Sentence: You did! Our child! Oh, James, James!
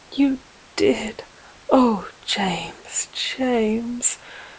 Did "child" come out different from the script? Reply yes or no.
yes